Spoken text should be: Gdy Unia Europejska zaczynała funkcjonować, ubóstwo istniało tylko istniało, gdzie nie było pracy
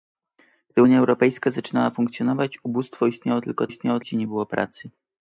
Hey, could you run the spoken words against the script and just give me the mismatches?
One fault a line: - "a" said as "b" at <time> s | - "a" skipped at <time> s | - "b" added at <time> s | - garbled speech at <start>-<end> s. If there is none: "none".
none